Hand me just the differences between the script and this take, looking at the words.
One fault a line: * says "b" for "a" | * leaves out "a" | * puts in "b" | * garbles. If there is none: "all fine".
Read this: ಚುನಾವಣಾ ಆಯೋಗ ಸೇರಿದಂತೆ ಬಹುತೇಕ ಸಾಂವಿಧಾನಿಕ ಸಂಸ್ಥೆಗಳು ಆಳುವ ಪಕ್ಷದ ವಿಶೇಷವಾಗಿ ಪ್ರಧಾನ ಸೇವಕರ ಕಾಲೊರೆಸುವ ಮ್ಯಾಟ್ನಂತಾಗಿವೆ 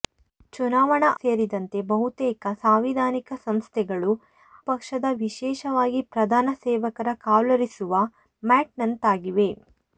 * leaves out "ಆಯೋಗ"
* leaves out "ಆಳುವ"